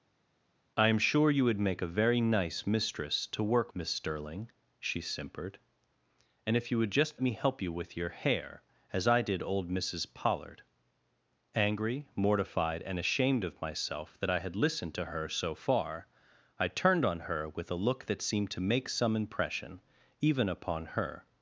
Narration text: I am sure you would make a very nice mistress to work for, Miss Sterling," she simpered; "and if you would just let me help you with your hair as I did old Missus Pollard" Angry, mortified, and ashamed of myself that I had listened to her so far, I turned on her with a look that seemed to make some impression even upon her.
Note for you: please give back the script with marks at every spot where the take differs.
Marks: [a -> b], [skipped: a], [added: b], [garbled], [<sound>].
I am sure you would make a very nice mistress to work [skipped: for,] Miss Sterling," she simpered; "and if you would just [skipped: let] me help you with your hair as I did old Missus Pollard" Angry, mortified, and ashamed of myself that I had listened to her so far, I turned on her with a look that seemed to make some impression even upon her.